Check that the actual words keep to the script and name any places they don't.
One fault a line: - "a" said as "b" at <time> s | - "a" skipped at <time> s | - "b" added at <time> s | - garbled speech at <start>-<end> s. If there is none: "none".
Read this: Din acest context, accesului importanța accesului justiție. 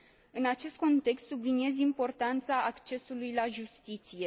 - "Din" said as "În" at 0.3 s
- "accesului" said as "subliniez" at 1.3 s
- "la" added at 3.3 s